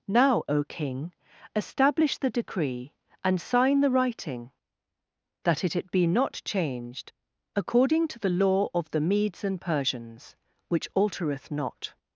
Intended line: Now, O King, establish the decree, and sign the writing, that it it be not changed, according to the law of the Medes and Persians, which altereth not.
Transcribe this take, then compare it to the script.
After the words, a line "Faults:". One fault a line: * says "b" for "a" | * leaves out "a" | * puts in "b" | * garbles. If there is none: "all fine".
Now, O King, establish the decree, and sign the writing, that it it be not changed, according to the law of the Medes and Persians, which altereth not.
Faults:
all fine